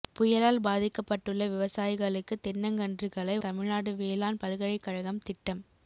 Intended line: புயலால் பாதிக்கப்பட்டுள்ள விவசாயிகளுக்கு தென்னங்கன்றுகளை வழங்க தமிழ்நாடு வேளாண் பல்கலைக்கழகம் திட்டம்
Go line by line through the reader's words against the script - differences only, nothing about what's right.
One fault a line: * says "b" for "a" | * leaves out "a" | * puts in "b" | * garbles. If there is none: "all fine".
* leaves out "வழங்க"